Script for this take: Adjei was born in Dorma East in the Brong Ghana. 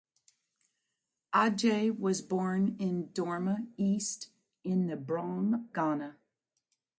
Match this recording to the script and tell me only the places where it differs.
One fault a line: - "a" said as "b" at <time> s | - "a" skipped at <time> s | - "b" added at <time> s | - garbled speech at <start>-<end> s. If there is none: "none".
none